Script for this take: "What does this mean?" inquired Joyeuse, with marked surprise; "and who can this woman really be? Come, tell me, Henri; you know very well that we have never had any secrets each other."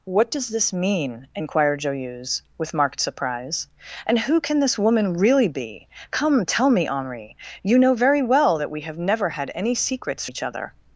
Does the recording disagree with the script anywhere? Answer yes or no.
no